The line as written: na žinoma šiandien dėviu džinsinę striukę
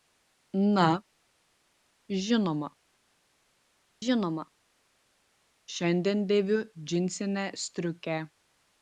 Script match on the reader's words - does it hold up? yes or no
no